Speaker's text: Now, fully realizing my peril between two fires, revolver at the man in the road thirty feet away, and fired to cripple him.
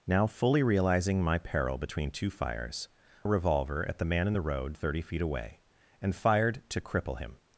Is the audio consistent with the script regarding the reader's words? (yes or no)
yes